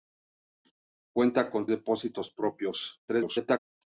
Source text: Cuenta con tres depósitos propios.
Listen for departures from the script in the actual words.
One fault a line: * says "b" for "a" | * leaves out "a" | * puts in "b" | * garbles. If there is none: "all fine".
* leaves out "tres"
* garbles